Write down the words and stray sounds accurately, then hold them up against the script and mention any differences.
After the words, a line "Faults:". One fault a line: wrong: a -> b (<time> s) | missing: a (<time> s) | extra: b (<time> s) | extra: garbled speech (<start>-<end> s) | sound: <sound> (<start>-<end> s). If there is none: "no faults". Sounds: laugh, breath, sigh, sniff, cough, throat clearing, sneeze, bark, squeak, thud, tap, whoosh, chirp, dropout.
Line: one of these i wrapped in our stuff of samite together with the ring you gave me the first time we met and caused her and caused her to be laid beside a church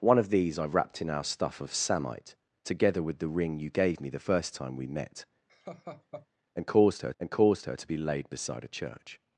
one of these i wrapped in our stuff of samite together with the ring you gave me the first time we met and caused her and caused her to be laid beside a church
Faults:
sound: laugh (5.5-6.3 s)